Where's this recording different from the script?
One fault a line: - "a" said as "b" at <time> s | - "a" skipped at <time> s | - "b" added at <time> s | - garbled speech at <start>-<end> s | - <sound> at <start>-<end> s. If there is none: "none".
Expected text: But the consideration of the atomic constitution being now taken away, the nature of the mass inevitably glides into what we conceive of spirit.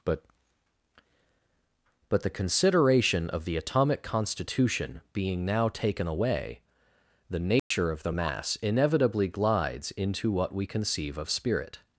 - "but" added at 2.1 s
- dropout at 7.6-7.7 s